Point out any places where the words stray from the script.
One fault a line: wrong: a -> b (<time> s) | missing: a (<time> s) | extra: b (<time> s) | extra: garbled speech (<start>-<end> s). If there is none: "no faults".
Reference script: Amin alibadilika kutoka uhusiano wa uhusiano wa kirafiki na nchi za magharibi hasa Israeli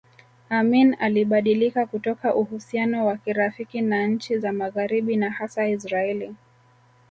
missing: uhusiano wa (3.2 s)
extra: na (5.2 s)